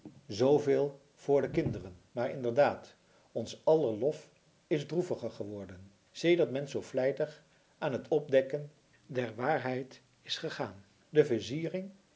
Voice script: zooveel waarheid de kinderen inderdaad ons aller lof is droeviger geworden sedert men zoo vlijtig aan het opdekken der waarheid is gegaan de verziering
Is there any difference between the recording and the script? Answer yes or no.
yes